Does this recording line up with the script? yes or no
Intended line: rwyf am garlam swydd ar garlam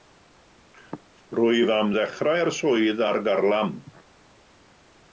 no